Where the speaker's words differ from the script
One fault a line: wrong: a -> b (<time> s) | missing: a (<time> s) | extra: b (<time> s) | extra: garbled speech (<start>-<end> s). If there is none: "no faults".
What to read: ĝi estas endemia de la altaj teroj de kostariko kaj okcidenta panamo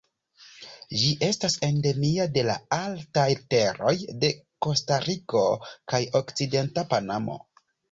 no faults